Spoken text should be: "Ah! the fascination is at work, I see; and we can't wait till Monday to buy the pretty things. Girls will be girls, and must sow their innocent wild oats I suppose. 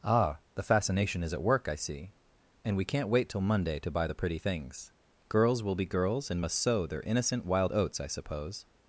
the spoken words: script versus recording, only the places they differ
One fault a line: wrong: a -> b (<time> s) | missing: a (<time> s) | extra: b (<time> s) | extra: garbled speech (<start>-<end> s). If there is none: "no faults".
no faults